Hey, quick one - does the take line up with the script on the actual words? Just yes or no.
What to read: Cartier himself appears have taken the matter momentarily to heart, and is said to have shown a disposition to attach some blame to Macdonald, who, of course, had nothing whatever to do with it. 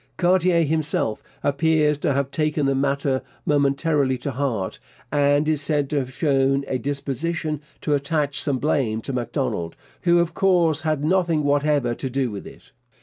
no